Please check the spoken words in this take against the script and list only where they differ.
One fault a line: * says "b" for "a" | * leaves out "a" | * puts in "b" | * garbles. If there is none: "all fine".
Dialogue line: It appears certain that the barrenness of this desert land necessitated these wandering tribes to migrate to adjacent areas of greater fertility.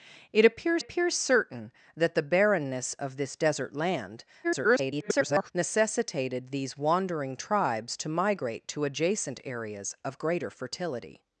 * puts in "appears"
* garbles